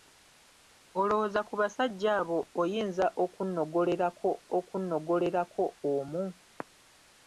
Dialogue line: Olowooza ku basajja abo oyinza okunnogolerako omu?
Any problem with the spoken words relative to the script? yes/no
yes